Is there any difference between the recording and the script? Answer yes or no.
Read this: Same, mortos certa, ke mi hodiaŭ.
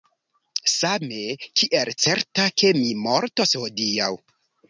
yes